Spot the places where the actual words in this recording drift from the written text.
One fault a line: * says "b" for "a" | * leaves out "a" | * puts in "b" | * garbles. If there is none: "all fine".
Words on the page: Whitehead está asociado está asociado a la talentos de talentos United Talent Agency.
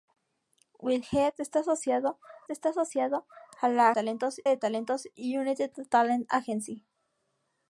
all fine